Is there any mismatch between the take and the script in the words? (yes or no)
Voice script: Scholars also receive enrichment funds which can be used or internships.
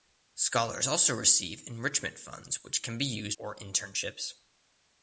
no